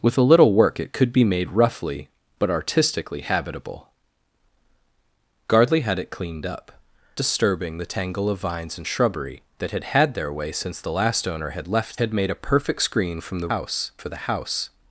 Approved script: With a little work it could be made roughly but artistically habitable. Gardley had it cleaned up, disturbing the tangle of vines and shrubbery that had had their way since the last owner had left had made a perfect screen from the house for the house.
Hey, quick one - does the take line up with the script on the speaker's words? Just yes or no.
yes